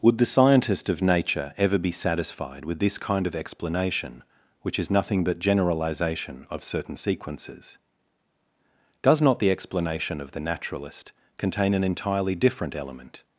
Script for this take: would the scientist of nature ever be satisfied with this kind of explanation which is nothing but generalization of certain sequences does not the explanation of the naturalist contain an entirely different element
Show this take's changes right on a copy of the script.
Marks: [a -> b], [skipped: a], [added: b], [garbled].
would the scientist of nature ever be satisfied with this kind of explanation which is nothing but generalization of certain sequences does not the explanation of the naturalist contain an entirely different element